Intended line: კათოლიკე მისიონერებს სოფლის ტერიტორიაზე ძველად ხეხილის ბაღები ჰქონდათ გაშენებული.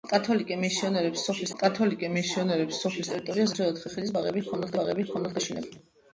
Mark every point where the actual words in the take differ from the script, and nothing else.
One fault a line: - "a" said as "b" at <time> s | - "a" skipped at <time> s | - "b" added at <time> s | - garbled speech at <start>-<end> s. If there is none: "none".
- "კათოლიკე მისიონერებს სოფლის" added at 1.6 s
- "ბაღები ჰქონდათ" added at 4.8 s